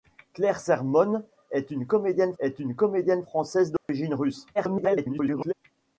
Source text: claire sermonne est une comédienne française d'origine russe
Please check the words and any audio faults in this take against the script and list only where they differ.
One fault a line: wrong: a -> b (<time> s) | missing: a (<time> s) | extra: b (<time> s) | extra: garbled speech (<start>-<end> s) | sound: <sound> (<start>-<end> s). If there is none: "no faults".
extra: est une comédienne (2.4 s)
sound: dropout (3.8-3.9 s)
extra: garbled speech (4.5-5.5 s)